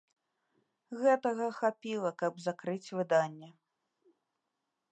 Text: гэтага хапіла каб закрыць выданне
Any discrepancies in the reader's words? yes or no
no